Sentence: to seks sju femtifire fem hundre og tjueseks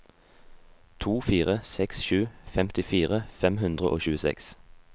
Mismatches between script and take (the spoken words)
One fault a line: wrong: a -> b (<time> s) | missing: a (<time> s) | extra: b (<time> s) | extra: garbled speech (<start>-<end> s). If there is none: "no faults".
extra: fire (1.3 s)